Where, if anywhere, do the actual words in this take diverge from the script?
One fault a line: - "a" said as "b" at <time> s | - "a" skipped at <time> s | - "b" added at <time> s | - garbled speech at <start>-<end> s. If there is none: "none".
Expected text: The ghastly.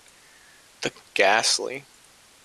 none